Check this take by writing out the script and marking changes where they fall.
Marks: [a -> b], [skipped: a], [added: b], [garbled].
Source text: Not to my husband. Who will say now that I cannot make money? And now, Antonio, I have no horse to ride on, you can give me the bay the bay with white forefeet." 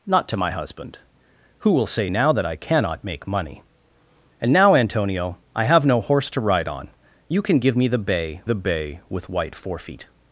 Not to my husband. Who will say now that I cannot make money? And now, Antonio, I have no horse to ride on, you can give me the bay the bay with white forefeet."